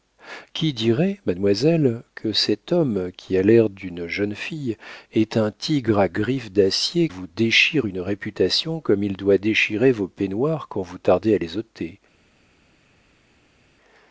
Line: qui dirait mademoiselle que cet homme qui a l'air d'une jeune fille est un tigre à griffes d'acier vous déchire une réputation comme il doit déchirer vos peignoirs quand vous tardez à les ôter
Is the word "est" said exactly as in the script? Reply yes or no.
yes